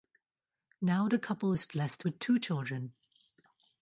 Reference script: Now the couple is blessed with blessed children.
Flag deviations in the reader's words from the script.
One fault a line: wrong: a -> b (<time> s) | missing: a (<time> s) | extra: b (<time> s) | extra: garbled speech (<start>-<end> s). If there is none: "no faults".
wrong: blessed -> two (2.2 s)